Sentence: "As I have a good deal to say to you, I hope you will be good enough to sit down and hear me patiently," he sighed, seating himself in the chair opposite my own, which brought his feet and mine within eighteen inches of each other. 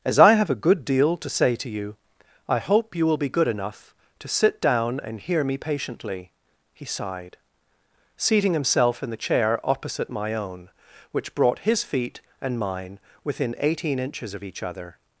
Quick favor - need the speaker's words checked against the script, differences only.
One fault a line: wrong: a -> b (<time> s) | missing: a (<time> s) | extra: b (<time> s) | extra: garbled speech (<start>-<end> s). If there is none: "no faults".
no faults